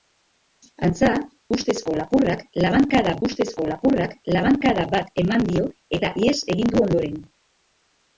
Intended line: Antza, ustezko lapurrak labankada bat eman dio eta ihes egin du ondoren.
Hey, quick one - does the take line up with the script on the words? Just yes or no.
no